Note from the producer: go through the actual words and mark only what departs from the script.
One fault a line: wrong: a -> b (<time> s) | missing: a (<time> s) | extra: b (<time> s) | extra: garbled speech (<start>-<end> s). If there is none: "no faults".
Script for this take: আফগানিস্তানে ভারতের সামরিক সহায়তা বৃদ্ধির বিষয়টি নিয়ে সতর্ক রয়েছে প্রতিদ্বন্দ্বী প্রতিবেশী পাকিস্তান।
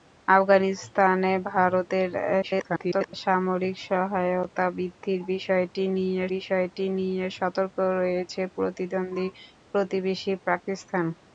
extra: garbled speech (2.4-3.1 s)
extra: বিষয়টি নিয়ে (6.3 s)